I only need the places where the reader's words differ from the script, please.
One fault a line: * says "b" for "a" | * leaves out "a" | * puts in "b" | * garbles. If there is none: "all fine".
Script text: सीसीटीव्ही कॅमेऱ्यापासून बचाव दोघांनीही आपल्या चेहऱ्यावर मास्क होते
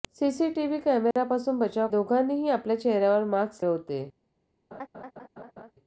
all fine